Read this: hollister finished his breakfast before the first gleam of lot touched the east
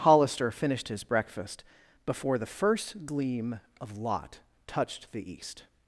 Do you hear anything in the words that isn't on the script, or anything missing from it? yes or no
no